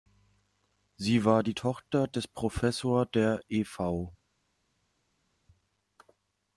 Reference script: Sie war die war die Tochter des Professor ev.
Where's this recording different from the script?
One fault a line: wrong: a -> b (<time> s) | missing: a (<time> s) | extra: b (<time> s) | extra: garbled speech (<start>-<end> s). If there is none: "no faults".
missing: war die (1.5 s)
extra: der (3.1 s)